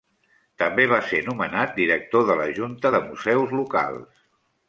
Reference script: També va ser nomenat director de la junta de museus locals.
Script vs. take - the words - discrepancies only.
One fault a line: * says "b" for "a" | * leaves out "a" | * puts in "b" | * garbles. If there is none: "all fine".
all fine